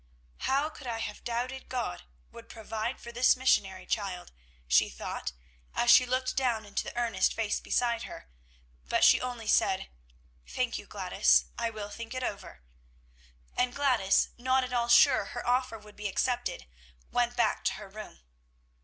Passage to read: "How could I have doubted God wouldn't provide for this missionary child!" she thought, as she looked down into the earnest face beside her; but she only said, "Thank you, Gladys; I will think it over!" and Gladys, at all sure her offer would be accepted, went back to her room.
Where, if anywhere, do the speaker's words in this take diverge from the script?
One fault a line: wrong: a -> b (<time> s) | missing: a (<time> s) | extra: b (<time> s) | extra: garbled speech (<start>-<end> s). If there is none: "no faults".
wrong: wouldn't -> would (2.3 s)
extra: not (14.4 s)